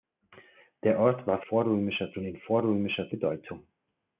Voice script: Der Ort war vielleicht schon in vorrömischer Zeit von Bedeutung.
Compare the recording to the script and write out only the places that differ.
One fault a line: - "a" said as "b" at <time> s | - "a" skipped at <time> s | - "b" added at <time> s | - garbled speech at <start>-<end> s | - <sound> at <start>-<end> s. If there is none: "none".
- "vielleicht" said as "vorrömischer" at 1.4 s
- "Zeit von" skipped at 3.1 s